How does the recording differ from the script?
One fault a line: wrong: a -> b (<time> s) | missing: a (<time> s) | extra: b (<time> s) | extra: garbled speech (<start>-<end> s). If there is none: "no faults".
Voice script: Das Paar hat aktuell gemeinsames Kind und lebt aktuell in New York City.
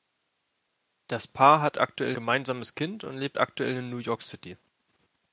no faults